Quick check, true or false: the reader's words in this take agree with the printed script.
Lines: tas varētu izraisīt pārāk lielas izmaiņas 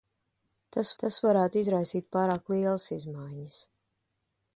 false